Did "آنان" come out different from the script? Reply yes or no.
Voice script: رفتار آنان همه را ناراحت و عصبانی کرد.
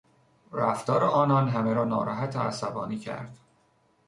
no